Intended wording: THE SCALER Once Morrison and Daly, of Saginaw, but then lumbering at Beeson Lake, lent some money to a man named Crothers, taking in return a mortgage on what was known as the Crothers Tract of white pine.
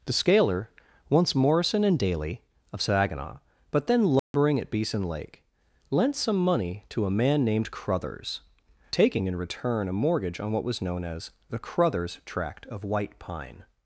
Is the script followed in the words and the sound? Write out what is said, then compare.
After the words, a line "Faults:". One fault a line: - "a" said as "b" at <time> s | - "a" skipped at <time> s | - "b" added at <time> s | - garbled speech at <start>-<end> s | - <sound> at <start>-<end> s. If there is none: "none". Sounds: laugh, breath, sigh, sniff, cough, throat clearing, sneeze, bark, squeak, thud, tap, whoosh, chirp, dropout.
THE SCALER Once Morrison and Daly, of Saginaw, but then lumbering at Beeson Lake, lent some money to a man named Crothers, taking in return a mortgage on what was known as the Crothers Tract of white pine.
Faults:
- dropout at 4.2-4.3 s